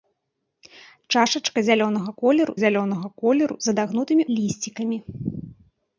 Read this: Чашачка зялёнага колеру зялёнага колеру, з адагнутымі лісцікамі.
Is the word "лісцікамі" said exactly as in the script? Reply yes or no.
yes